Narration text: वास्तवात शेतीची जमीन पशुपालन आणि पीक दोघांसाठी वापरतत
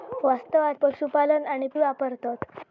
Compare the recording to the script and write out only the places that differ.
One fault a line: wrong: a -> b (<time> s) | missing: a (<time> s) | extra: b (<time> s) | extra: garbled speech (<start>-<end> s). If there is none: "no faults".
missing: शेतीची जमीन (0.8 s)
missing: पीक दोघांसाठी (1.7 s)